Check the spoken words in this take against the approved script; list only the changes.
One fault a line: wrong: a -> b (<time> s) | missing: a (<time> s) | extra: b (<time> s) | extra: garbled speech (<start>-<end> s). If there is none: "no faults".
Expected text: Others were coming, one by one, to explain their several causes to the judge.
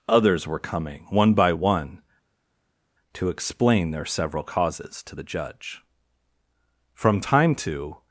extra: From time to (6.9 s)